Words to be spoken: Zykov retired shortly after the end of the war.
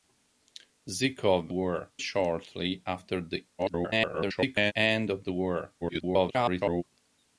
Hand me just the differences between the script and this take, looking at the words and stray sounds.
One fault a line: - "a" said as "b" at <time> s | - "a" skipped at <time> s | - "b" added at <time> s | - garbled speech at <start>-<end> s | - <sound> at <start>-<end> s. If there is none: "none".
- "retired" said as "war" at 1.5 s
- garbled speech at 3.6-4.7 s
- garbled speech at 5.8-6.8 s